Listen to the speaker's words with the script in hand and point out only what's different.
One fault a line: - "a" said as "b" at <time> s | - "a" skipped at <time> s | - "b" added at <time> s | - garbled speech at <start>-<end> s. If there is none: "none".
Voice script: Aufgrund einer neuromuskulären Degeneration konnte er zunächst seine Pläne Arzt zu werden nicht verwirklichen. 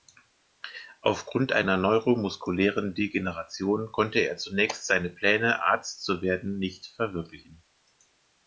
none